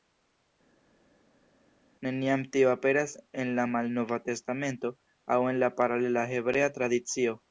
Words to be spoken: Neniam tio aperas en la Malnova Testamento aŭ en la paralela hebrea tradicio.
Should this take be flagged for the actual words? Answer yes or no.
no